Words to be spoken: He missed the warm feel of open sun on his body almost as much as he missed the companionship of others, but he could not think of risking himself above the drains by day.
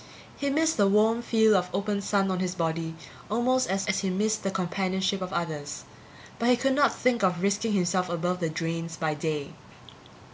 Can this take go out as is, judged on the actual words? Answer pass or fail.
fail